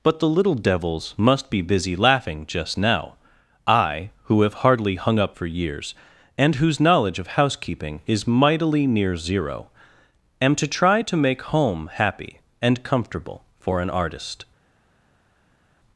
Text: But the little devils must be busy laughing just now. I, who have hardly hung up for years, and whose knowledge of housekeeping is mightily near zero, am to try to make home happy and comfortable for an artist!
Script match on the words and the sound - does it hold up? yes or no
yes